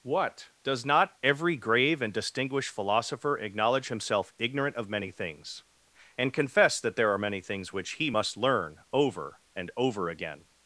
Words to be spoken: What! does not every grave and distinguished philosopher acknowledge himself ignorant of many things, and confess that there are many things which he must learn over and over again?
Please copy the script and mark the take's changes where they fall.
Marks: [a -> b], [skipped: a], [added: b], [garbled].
What! does not every grave and distinguished philosopher acknowledge himself ignorant of many things, and confess that there are many things which he must learn over and over again?